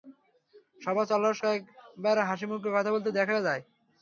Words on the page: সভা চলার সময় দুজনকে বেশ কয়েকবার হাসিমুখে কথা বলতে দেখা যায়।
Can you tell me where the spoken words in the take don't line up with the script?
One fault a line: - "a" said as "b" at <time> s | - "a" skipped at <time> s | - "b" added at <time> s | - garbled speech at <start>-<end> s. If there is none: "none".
- "সময় দুজনকে বেশ" skipped at 1.4 s